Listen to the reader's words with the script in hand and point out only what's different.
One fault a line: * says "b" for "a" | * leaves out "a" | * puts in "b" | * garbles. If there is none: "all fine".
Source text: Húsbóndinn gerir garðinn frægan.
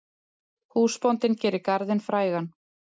all fine